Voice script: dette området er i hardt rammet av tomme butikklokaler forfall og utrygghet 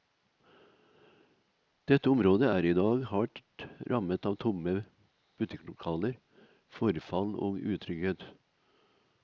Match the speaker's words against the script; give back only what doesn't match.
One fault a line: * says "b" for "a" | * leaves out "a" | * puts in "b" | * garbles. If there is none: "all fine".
* puts in "dag"